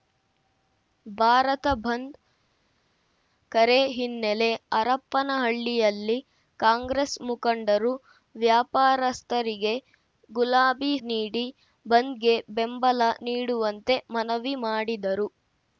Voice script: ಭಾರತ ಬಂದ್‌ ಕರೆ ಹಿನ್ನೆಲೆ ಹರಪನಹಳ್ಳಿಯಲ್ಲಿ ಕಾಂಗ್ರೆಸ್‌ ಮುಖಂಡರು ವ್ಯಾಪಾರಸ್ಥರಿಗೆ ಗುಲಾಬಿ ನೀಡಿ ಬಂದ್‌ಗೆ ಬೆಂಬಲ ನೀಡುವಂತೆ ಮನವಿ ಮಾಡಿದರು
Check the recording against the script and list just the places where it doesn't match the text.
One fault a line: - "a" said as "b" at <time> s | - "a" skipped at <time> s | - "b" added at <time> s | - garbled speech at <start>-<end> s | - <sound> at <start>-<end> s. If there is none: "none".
none